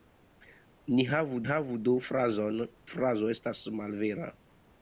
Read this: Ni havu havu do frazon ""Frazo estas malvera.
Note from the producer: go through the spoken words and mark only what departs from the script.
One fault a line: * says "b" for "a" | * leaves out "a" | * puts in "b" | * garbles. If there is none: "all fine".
all fine